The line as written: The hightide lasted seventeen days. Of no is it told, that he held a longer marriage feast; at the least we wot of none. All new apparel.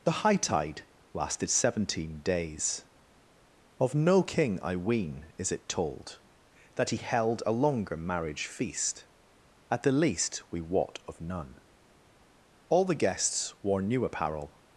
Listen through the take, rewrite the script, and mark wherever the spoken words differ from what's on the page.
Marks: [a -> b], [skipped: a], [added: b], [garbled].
The hightide lasted seventeen days. Of no [added: king I ween] is it told, that he held a longer marriage feast; at the least we wot of none. All [added: the guests wore] new apparel.